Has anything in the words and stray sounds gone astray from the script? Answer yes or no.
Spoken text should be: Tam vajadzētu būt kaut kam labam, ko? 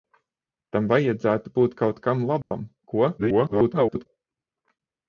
yes